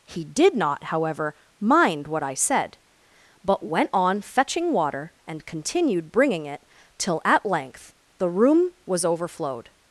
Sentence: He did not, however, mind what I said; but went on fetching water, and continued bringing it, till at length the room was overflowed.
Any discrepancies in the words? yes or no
no